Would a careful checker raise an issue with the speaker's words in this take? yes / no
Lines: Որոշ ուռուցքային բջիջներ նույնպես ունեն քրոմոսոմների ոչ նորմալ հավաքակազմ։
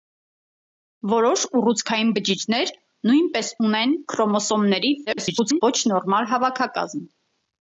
yes